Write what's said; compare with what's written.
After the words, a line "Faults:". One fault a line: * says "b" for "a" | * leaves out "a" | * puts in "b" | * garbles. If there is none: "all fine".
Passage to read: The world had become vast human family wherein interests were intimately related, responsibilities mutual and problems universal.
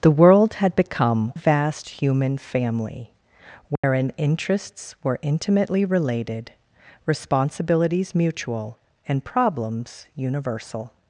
The world had become vast human family wherein interests were intimately related, responsibilities mutual and problems universal.
Faults:
all fine